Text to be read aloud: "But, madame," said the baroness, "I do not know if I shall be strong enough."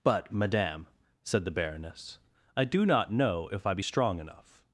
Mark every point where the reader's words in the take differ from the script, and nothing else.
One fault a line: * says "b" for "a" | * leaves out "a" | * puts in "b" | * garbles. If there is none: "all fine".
* leaves out "shall"